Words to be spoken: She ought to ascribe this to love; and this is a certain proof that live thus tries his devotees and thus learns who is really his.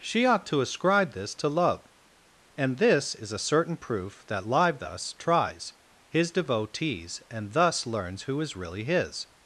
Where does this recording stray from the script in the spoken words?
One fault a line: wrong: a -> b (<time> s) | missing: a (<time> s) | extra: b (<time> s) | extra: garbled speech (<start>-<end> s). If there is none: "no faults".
no faults